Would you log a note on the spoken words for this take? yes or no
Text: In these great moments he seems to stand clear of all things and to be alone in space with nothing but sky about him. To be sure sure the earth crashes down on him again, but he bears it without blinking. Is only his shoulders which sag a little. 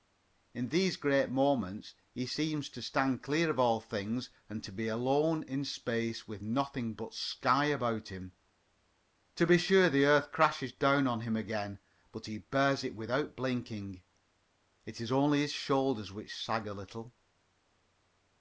yes